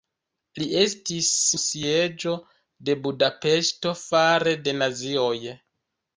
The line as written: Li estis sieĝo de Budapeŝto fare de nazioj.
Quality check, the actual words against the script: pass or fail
pass